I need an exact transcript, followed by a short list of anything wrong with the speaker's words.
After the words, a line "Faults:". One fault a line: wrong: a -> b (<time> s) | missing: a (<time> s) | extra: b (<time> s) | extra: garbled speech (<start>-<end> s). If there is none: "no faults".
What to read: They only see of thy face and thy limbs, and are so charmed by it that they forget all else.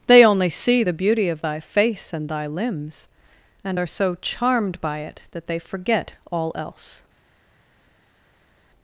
They only see the beauty of thy face and thy limbs, and are so charmed by it that they forget all else.
Faults:
extra: the beauty (0.8 s)